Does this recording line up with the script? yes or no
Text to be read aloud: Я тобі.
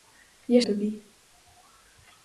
yes